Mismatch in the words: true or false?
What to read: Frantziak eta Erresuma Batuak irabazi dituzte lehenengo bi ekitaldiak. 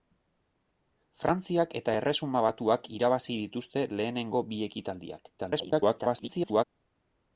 true